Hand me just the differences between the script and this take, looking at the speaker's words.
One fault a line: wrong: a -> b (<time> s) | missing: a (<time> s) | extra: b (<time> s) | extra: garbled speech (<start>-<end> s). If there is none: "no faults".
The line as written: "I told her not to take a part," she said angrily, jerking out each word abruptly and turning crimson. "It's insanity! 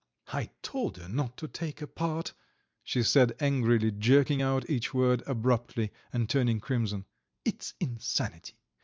no faults